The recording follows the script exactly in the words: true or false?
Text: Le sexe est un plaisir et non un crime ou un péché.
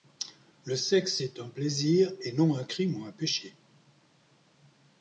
true